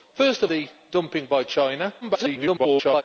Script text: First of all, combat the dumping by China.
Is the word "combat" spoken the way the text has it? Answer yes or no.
no